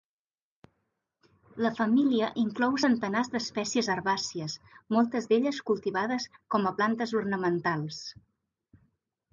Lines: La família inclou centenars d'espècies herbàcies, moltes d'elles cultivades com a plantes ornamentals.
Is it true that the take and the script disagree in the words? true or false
false